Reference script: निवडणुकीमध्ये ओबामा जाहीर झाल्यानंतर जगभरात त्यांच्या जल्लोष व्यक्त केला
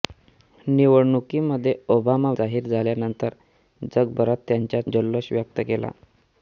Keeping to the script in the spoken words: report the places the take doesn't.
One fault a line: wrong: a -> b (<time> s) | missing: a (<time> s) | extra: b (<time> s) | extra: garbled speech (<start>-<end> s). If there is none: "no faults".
no faults